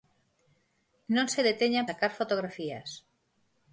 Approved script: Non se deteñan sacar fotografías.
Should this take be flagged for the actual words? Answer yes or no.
no